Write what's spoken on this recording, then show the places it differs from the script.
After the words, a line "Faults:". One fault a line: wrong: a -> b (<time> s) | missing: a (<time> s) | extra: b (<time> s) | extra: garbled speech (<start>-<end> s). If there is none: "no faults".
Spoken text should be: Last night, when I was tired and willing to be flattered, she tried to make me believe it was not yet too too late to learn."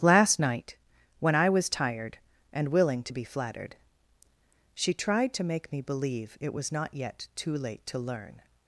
Last night, when I was tired and willing to be flattered, she tried to make me believe it was not yet too late to learn."
Faults:
missing: too (7.5 s)